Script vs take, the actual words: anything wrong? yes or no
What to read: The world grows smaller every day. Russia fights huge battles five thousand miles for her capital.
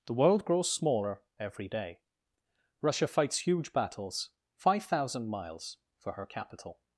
no